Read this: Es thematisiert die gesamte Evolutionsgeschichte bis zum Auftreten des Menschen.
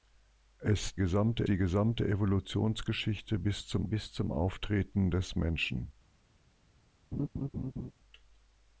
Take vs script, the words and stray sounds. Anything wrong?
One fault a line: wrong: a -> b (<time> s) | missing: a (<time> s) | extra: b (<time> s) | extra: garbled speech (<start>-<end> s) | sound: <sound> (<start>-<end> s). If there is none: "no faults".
wrong: thematisiert -> gesamte (0.9 s)
extra: bis zum (3.8 s)
sound: laugh (7.1-7.9 s)